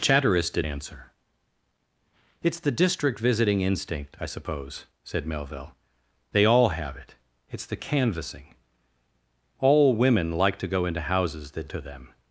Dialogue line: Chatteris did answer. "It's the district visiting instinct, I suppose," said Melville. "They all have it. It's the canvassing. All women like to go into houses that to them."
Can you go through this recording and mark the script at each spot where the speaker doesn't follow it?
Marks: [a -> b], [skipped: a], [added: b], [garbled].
Chatteris did answer. "It's the district visiting instinct, I suppose," said Melville. "They all have it. It's the canvassing. All women like to go into houses that to them."